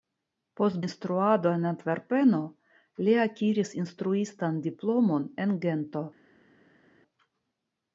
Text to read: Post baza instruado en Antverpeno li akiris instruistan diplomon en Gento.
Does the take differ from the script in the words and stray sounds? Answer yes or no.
yes